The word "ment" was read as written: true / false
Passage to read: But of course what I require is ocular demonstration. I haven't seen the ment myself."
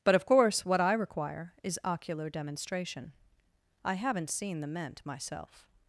true